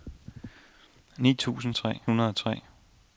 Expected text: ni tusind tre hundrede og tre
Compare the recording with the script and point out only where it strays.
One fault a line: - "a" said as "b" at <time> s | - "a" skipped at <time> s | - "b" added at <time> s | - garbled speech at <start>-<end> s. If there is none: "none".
none